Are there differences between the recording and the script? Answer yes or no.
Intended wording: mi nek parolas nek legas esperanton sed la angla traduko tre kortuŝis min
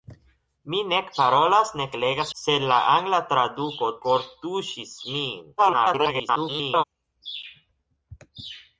yes